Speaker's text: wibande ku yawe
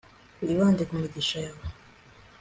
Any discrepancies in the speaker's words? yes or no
yes